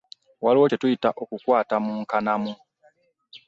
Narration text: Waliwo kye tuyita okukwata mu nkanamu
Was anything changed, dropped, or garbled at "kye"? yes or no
no